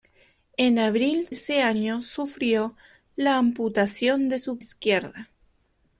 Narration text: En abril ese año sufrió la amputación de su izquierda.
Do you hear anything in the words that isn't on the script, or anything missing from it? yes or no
no